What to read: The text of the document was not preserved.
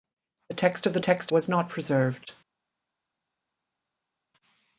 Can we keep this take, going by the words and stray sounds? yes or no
no